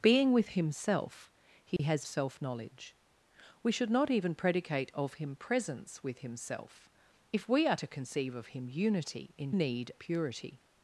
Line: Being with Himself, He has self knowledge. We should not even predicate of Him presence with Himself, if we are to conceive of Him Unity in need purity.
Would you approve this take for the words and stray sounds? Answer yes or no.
no